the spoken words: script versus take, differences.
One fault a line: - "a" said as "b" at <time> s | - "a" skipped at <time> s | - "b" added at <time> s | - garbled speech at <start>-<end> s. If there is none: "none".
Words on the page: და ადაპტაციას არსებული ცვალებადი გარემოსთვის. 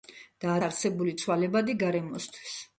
- "ადაპტაციას" skipped at 0.6 s